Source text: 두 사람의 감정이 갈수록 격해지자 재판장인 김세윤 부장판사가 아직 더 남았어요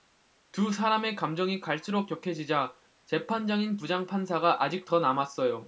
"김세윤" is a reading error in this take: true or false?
true